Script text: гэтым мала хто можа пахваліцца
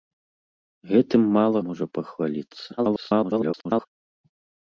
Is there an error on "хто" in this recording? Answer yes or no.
yes